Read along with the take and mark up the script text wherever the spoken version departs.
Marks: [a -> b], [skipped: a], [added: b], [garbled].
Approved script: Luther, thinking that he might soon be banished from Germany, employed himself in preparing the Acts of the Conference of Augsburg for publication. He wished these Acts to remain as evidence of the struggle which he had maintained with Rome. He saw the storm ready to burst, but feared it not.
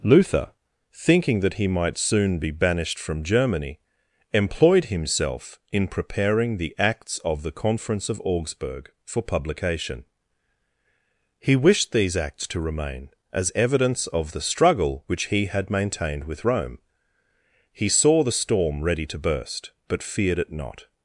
Luther, thinking that he might soon be banished from Germany, employed himself in preparing the Acts of the Conference of Augsburg for publication. He wished these Acts to remain as evidence of the struggle which he had maintained with Rome. He saw the storm ready to burst, but feared it not.